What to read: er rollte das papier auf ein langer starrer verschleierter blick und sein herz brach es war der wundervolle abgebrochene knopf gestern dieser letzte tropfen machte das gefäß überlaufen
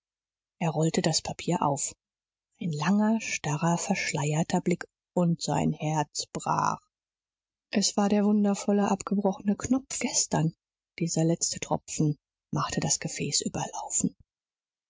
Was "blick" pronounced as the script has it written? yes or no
yes